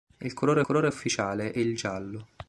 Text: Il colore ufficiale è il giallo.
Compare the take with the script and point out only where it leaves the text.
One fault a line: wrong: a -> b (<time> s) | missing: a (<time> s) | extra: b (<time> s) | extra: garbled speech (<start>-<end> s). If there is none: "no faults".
extra: colore (0.6 s)